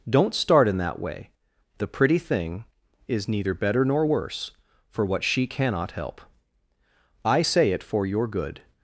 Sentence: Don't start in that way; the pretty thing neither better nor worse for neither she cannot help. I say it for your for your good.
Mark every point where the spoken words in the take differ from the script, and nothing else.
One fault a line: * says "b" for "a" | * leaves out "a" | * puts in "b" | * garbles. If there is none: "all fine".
* puts in "is"
* says "what" for "neither"
* leaves out "for your"